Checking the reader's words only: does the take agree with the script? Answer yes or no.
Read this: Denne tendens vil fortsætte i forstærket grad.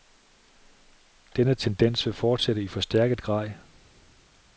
yes